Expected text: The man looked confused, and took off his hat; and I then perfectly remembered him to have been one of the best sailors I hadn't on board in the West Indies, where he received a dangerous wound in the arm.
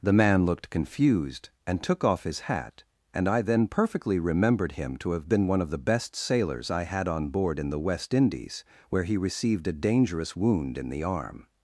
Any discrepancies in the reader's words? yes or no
yes